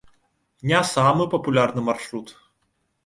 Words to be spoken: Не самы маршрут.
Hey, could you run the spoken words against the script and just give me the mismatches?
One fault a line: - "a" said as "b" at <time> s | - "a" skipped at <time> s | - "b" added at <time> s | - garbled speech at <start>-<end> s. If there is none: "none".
- "папулярны" added at 1.4 s